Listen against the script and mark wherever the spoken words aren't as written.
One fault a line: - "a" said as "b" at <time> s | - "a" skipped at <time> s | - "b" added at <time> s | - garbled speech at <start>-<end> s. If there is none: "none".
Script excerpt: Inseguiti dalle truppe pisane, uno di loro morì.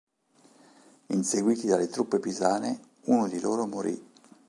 none